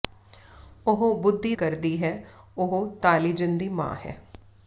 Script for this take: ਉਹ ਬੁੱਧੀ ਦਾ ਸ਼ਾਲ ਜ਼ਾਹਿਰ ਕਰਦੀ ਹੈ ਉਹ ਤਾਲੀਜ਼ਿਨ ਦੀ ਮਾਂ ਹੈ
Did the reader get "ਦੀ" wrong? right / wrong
right